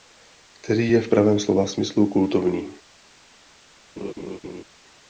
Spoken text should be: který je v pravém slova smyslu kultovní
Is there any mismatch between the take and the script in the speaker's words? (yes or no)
no